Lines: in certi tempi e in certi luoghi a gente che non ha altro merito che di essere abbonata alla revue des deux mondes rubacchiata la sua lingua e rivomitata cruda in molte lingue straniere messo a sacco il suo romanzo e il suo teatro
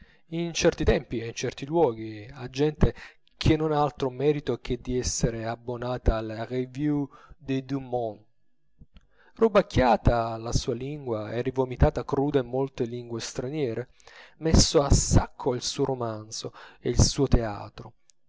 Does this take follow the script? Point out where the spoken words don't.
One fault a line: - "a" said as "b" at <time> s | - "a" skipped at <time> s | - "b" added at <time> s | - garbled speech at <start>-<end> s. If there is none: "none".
none